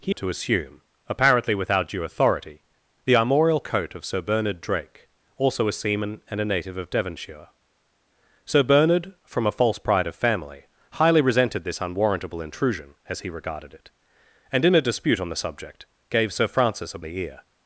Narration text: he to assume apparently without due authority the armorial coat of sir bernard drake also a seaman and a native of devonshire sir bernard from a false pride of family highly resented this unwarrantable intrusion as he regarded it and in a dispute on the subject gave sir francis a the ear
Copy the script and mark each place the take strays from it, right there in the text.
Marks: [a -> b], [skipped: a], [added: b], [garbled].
he to assume apparently without due authority the armorial coat of sir bernard drake also a seaman and a native of devonshire sir bernard from a false pride of family highly resented this unwarrantable intrusion as he regarded it and in a dispute on the subject gave sir francis a the ear